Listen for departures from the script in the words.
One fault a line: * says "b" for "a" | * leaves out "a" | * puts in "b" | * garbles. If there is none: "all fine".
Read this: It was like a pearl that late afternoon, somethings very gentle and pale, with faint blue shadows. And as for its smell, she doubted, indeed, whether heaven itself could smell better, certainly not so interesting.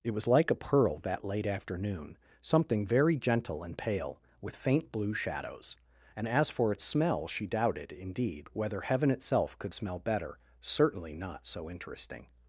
* says "something" for "somethings"